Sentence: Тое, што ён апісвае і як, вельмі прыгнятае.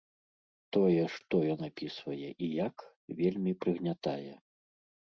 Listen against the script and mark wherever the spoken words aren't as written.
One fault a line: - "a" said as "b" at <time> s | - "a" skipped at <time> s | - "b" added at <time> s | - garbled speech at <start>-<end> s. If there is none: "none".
none